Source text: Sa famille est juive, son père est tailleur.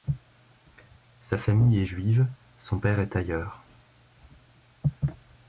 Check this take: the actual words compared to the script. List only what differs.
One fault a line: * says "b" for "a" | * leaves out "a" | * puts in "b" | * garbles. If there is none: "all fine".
all fine